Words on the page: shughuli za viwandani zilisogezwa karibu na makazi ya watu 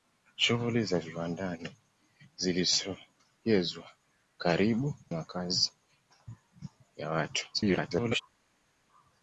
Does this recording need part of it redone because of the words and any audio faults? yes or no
yes